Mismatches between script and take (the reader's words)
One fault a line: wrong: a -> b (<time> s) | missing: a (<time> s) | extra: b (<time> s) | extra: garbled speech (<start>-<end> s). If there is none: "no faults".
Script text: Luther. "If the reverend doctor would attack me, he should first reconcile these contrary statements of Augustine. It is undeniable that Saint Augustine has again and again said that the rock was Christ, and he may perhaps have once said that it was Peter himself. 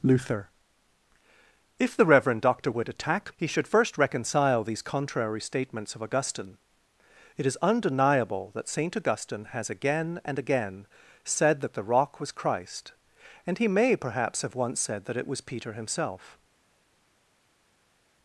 missing: me (3.3 s)